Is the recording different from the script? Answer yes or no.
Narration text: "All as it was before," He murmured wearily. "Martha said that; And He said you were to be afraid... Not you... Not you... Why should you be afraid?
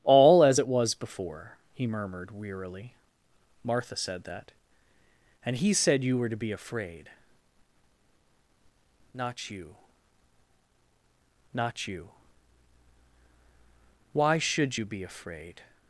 no